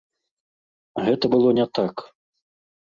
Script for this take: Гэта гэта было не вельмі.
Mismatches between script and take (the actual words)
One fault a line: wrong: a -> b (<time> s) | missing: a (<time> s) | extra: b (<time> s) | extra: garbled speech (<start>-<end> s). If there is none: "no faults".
missing: гэта (1.2 s)
wrong: вельмі -> так (1.8 s)